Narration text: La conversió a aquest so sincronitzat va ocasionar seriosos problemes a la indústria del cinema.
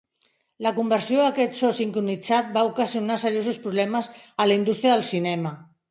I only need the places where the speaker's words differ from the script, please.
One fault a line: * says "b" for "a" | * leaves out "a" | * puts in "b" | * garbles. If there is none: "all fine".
all fine